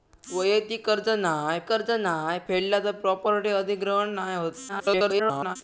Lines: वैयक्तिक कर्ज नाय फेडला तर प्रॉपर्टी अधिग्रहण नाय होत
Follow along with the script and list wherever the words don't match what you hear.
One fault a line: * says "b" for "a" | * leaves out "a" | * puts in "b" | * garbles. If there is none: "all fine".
* puts in "कर्ज नाय"
* garbles